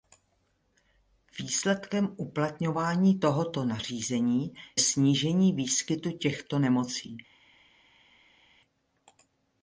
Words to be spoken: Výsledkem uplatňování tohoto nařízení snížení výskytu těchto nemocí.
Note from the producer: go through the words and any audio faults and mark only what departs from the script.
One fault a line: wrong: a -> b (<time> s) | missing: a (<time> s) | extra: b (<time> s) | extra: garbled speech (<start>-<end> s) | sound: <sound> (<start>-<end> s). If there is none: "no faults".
no faults